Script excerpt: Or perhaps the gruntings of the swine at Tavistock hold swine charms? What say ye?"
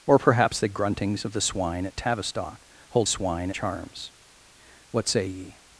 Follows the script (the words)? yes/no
yes